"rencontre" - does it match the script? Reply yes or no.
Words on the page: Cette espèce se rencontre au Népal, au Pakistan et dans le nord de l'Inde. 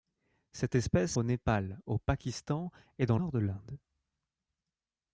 no